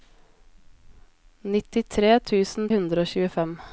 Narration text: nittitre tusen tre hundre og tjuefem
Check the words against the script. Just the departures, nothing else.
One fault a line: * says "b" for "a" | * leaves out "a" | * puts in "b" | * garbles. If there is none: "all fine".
* leaves out "tre"